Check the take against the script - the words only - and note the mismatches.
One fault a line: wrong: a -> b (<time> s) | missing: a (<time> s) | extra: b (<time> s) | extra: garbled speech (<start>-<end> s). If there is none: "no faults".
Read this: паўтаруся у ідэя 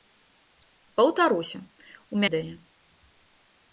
no faults